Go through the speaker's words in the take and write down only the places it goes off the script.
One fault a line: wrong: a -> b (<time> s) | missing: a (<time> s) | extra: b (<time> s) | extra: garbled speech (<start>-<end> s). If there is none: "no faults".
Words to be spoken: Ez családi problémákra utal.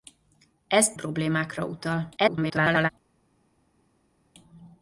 missing: családi (0.9 s)
extra: garbled speech (2.2-2.9 s)